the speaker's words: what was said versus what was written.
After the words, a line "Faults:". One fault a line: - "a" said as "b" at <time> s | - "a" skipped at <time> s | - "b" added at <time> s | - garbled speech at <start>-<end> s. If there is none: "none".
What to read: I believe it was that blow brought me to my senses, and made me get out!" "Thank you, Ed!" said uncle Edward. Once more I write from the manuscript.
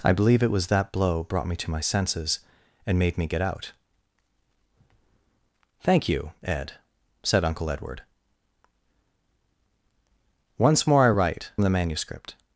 I believe it was that blow brought me to my senses, and made me get out!" "Thank you, Ed!" said uncle Edward. Once more I write the manuscript.
Faults:
- "from" skipped at 11.5 s